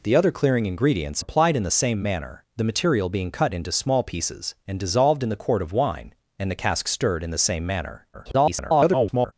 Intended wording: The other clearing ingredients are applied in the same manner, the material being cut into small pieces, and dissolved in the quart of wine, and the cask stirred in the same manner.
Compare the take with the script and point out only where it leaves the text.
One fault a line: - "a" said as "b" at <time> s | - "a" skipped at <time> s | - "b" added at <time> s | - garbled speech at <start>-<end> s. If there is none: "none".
- "are" skipped at 1.2 s
- garbled speech at 8.1-9.3 s